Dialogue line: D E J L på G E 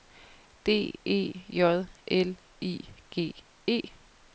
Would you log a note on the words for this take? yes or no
yes